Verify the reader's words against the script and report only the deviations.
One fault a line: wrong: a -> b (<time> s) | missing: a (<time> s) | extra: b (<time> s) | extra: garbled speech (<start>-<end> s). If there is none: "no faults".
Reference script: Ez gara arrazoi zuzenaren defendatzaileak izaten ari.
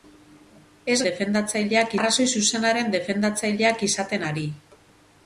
wrong: gara -> defendatzaileak (1.1 s)